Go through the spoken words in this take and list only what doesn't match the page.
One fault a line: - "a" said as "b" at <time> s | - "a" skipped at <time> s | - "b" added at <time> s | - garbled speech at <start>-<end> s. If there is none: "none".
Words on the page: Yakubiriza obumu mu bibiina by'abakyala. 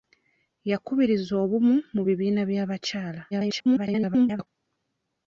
- garbled speech at 3.3-4.5 s